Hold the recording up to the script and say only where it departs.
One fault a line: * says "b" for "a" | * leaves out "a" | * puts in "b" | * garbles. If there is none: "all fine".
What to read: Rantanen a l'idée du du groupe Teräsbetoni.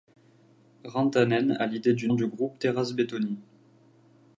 all fine